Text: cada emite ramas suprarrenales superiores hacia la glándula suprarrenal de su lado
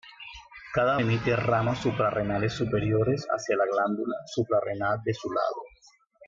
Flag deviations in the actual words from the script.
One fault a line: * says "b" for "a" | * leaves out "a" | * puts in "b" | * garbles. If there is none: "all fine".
all fine